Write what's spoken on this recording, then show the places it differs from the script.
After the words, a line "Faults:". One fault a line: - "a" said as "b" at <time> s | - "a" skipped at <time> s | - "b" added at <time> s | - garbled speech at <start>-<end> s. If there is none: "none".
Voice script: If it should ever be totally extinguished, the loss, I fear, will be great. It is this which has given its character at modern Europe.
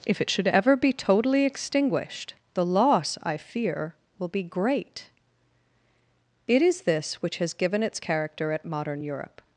If it should ever be totally extinguished, the loss, I fear, will be great. It is this which has given its character at modern Europe.
Faults:
none